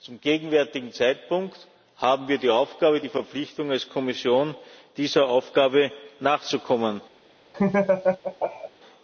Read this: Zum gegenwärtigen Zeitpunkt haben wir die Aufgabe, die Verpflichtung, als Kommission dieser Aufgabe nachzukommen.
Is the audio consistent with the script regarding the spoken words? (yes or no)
yes